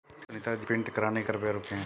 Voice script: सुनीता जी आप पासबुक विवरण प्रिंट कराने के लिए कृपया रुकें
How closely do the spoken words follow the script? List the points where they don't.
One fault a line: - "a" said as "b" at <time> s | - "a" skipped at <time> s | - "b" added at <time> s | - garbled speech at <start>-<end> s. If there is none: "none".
- "आप पासबुक विवरण" skipped at 0.7 s
- "लिए" skipped at 1.3 s